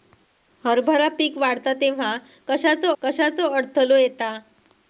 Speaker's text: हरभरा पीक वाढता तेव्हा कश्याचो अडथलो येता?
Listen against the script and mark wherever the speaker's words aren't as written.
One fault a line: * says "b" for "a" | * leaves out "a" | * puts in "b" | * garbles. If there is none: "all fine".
* puts in "कश्याचो"